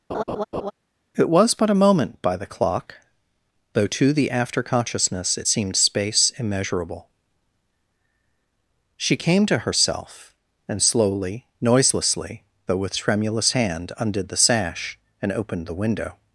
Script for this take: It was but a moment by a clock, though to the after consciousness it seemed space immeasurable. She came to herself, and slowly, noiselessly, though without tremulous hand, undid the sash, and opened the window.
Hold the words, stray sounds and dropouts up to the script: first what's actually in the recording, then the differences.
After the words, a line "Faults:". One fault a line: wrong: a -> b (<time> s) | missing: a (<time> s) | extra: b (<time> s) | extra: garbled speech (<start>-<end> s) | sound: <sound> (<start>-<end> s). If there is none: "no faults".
It was but a moment by the clock, though to the after consciousness it seemed space immeasurable. She came to herself, and slowly, noiselessly, though with tremulous hand, undid the sash, and opened the window.
Faults:
sound: laugh (0.1-0.7 s)
wrong: a -> the (2.4 s)
wrong: without -> with (12.8 s)